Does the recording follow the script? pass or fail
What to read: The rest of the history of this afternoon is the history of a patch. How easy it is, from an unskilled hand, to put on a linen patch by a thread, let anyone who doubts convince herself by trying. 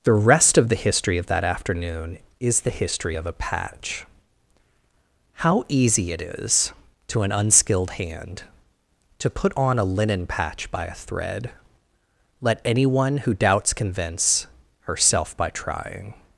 fail